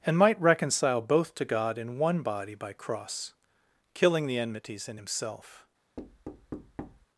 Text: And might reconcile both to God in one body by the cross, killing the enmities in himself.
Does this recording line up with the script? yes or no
no